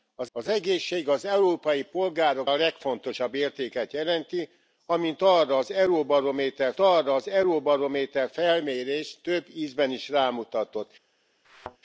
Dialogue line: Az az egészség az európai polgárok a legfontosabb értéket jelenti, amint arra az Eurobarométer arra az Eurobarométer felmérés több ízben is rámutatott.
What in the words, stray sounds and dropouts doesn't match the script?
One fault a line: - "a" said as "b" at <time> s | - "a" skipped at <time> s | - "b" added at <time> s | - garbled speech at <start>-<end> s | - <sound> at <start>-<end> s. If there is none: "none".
- thud at 11.4-11.8 s